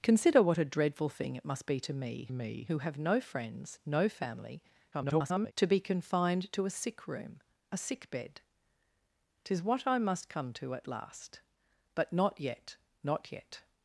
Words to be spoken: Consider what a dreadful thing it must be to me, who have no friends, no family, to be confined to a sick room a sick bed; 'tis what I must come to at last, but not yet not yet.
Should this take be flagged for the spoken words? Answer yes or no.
yes